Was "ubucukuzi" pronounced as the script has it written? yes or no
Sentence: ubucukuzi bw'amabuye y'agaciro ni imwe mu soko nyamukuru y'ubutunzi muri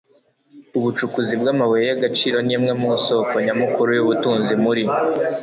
yes